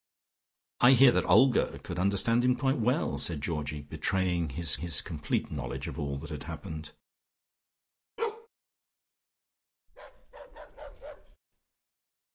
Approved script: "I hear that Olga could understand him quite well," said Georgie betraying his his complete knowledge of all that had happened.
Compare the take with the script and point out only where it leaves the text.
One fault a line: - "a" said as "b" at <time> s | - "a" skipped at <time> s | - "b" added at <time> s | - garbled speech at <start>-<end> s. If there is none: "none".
none